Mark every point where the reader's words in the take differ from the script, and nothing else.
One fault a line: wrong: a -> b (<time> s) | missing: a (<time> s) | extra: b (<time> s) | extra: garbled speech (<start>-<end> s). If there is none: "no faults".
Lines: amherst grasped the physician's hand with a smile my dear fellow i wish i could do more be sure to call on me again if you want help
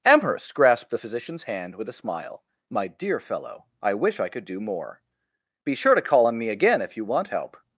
no faults